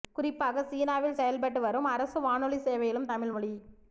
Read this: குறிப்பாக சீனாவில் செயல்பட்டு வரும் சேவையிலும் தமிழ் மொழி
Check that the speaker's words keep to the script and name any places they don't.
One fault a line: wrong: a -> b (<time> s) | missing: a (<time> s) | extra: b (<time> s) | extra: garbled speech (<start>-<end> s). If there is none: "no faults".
extra: அரசு வானொலி (1.9 s)